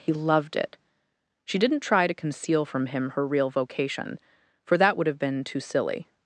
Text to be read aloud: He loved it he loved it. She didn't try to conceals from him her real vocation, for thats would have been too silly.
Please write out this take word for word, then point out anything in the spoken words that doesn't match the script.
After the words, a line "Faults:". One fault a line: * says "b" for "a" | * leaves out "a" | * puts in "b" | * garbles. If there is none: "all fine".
He loved it. She didn't try to conceal from him her real vocation, for that would have been too silly.
Faults:
* leaves out "he loved it"
* says "conceal" for "conceals"
* says "that" for "thats"